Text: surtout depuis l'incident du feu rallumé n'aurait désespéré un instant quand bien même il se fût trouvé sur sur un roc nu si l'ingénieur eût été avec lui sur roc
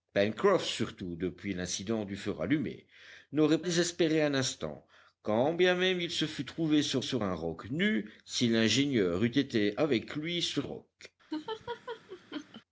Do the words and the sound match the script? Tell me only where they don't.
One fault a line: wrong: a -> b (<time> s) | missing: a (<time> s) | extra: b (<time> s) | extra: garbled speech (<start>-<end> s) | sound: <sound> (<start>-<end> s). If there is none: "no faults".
sound: laugh (11.3-12.6 s)